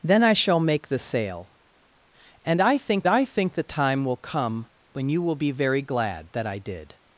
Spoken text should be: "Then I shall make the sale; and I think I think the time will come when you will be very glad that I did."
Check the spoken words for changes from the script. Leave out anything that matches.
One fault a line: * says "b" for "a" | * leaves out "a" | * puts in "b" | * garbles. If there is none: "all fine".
all fine